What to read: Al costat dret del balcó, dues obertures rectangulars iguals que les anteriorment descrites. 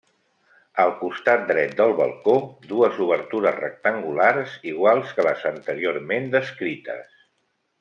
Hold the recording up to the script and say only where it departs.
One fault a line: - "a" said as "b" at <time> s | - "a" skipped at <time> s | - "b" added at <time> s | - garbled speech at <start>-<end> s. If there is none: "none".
none